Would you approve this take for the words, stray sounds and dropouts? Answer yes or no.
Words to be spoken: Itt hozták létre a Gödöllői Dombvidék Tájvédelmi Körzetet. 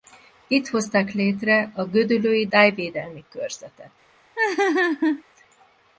no